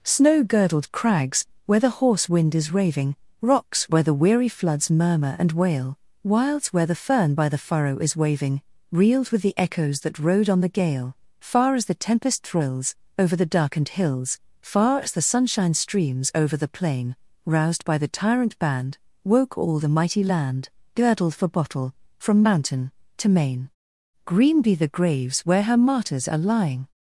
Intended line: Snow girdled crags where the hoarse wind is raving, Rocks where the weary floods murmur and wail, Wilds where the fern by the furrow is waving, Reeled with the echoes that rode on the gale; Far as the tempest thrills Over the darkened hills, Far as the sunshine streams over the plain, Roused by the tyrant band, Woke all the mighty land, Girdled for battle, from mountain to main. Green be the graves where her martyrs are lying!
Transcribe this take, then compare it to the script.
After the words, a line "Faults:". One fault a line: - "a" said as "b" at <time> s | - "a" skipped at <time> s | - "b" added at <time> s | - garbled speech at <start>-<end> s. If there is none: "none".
Snow girdled crags where the hoarse wind is raving, Rocks where the weary floods murmur and wail, Wilds where the fern by the furrow is waving, Reeled with the echoes that rode on the gale; Far as the tempest thrills Over the darkened hills, Far as the sunshine streams over the plain, Roused by the tyrant band, Woke all the mighty land, Girdled for bottle, from mountain to main. Green be the graves where her martyrs are lying!
Faults:
- "battle" said as "bottle" at 21.5 s